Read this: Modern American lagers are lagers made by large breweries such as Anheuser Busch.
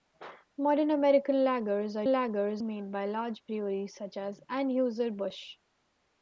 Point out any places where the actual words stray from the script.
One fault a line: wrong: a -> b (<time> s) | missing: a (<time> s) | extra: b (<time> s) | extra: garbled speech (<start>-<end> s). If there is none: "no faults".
no faults